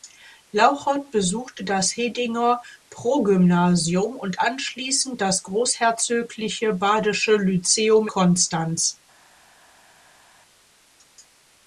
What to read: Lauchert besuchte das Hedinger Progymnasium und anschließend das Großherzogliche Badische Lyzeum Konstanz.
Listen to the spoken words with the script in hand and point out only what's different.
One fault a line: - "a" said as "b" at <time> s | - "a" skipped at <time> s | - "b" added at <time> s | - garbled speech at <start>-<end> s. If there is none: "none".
none